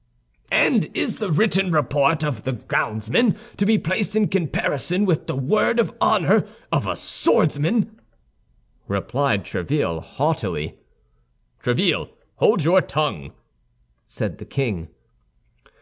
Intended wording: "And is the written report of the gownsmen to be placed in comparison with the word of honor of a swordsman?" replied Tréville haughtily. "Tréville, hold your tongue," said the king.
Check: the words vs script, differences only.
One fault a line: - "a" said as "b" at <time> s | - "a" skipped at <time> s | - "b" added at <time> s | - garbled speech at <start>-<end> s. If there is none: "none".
none